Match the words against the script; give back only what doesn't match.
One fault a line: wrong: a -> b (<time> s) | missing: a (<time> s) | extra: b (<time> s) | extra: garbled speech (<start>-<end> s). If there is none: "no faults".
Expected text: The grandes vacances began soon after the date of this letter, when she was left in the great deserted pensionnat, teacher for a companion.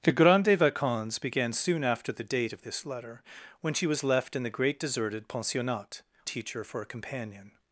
no faults